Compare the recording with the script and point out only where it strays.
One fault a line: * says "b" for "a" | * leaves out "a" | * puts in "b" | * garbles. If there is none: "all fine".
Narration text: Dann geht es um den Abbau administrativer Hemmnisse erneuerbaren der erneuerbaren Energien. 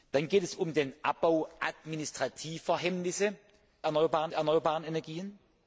all fine